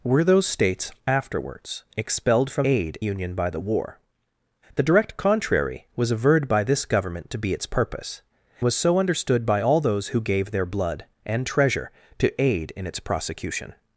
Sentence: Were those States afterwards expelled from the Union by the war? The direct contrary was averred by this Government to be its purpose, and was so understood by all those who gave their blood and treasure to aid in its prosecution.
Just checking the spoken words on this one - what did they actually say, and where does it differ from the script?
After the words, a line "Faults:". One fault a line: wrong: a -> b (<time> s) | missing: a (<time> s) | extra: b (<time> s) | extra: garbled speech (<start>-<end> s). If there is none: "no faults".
Were those States afterwards expelled from aid Union by the war? The direct contrary was averred by this Government to be its purpose, was so understood by all those who gave their blood and treasure to aid in its prosecution.
Faults:
wrong: the -> aid (2.7 s)
missing: and (8.2 s)